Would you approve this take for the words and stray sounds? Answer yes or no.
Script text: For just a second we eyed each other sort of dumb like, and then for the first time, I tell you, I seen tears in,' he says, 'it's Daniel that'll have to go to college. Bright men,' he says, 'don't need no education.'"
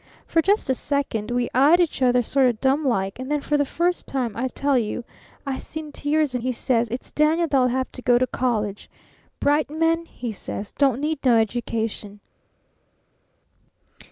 yes